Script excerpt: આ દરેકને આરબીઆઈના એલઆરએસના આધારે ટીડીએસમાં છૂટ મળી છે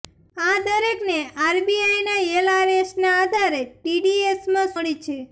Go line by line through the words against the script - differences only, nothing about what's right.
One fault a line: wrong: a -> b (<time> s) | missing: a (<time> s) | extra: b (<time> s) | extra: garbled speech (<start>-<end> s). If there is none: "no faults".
missing: છૂટ (4.7 s)